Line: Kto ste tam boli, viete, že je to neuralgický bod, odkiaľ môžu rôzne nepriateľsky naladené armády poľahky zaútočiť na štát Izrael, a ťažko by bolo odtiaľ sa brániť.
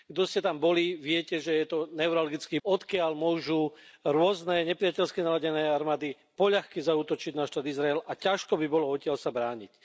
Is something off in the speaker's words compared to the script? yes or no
yes